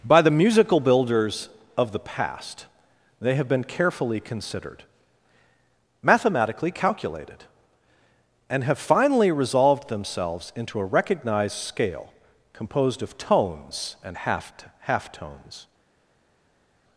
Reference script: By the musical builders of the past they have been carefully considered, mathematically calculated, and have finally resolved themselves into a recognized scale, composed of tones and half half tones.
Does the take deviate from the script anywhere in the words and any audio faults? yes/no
no